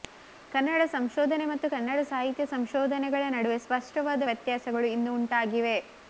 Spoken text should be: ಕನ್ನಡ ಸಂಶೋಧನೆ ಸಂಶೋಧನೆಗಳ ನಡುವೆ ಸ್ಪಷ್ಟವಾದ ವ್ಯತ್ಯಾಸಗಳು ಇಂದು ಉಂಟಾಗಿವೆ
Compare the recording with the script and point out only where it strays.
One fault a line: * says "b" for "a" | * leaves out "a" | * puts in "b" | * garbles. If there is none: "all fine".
* puts in "ಮತ್ತು ಕನ್ನಡ ಸಾಹಿತ್ಯ"